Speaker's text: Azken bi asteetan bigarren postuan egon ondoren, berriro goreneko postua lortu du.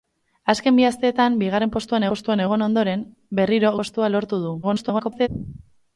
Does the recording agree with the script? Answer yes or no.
no